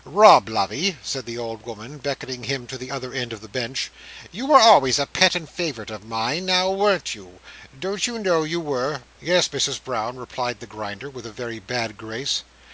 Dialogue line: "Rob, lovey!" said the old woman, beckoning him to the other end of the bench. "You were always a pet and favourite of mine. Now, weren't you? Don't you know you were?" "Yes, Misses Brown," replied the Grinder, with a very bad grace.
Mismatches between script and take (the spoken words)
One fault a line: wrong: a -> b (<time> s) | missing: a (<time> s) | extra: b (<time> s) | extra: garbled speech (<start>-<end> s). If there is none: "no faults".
no faults